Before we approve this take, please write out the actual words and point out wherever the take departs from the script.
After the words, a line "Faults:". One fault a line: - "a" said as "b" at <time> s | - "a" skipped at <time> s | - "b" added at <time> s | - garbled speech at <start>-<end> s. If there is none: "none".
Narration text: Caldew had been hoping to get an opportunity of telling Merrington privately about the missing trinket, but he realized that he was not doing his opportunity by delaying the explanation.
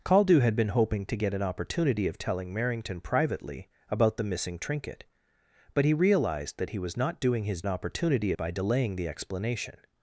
Caldew had been hoping to get an opportunity of telling Merrington privately about the missing trinket, but he realized that he was not doing his opportunity by delaying the explanation.
Faults:
none